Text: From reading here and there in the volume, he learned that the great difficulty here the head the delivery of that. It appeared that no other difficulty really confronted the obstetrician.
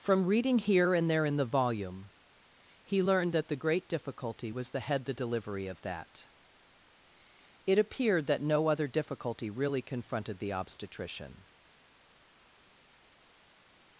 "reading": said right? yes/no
yes